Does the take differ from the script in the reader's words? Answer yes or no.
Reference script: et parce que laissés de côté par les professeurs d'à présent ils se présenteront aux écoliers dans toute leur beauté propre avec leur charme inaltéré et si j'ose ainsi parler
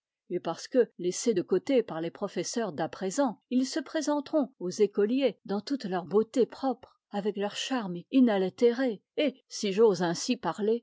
no